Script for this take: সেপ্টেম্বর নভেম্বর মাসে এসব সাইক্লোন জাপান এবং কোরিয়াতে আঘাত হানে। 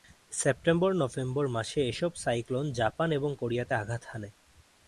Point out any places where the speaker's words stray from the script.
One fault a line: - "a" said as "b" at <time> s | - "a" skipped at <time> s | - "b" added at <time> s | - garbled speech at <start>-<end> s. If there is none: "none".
none